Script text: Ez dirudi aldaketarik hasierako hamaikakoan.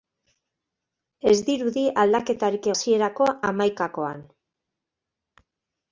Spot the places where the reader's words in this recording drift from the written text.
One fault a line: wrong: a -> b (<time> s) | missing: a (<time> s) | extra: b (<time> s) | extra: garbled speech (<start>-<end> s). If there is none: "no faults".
no faults